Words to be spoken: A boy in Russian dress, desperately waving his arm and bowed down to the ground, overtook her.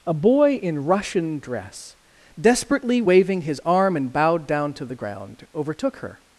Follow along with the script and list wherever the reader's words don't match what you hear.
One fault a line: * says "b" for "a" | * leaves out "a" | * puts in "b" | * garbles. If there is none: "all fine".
all fine